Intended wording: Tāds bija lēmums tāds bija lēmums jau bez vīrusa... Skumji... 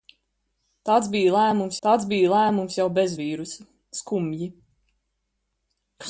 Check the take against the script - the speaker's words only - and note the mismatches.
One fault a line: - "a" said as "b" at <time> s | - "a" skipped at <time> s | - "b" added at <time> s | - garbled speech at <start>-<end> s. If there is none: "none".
none